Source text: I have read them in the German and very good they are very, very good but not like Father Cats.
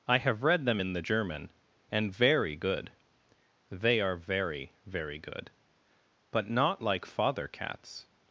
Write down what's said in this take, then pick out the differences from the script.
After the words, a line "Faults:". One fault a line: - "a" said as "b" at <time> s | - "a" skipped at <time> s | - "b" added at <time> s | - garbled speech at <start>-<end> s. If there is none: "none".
I have read them in the German and very good they are very, very good but not like Father Cats.
Faults:
none